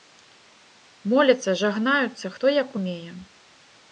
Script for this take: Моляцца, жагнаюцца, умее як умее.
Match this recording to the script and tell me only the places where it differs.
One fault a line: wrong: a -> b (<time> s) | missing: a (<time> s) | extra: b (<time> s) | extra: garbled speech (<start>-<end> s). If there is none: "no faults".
wrong: умее -> хто (2.3 s)